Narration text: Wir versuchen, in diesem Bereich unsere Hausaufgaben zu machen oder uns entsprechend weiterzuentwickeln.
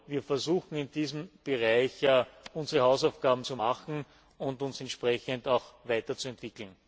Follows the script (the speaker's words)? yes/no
no